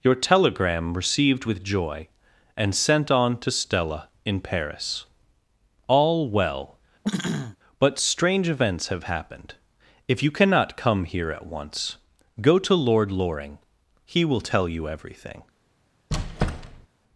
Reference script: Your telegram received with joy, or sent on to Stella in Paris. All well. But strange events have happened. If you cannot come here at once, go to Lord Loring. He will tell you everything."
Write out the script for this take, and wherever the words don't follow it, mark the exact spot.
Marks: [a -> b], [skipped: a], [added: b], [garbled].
Your telegram received with joy, [or -> and] sent on to Stella in Paris. All well. But strange events have happened. If you cannot come here at once, go to Lord Loring. He will tell you everything."